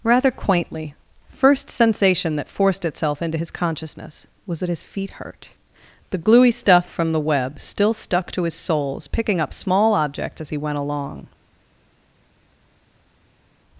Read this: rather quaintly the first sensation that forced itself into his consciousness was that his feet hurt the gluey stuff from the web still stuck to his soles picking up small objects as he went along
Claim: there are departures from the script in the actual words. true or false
true